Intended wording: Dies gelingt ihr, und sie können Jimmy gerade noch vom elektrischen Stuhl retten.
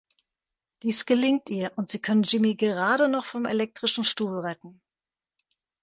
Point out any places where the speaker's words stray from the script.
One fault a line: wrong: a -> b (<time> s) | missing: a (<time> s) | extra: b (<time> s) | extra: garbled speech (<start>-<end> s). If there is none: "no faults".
no faults